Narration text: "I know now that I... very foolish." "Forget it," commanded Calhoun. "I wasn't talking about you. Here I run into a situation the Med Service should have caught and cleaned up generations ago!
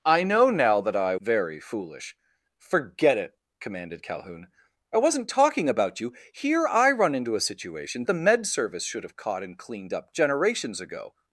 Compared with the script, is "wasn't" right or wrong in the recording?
right